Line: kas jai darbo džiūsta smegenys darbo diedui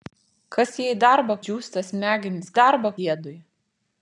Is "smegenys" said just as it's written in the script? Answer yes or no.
yes